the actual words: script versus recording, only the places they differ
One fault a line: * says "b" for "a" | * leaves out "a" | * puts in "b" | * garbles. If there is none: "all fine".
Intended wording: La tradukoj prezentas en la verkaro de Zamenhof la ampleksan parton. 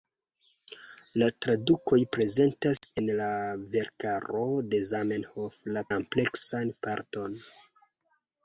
all fine